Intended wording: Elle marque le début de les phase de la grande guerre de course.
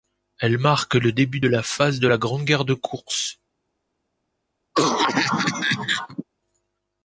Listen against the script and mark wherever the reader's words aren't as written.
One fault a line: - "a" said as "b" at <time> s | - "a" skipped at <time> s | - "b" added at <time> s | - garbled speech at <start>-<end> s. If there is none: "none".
- "les" said as "la" at 1.5 s